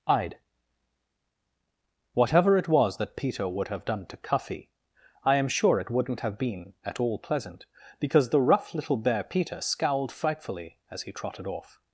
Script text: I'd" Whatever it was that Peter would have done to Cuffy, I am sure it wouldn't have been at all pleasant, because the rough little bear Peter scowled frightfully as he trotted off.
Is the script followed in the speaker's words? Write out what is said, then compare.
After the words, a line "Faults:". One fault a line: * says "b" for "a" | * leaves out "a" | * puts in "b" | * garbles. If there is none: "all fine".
I'd" Whatever it was that Peter would have done to Cuffy, I am sure it wouldn't have been at all pleasant, because the rough little bear Peter scowled frightfully as he trotted off.
Faults:
all fine